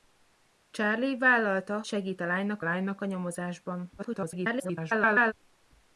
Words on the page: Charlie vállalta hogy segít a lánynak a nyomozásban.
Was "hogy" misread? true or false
true